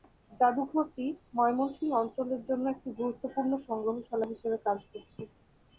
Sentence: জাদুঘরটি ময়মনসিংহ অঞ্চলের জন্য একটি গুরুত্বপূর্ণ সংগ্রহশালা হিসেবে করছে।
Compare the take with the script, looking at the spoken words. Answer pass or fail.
fail